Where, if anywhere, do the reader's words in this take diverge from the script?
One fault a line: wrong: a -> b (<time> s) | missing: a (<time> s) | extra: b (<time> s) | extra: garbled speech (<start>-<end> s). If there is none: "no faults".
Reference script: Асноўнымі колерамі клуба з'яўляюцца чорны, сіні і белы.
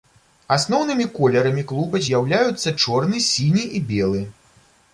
no faults